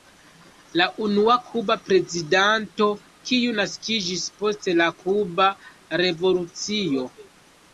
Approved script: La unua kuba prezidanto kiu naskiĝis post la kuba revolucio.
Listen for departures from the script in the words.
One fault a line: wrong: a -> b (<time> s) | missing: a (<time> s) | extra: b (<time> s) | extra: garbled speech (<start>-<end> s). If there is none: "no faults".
no faults